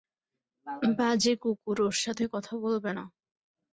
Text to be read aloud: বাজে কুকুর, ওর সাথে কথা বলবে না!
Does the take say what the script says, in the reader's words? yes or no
yes